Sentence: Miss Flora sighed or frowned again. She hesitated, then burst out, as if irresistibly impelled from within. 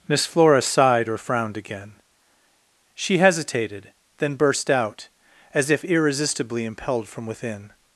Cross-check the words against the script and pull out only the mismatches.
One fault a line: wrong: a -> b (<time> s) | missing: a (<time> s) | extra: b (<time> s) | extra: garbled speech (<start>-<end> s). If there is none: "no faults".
no faults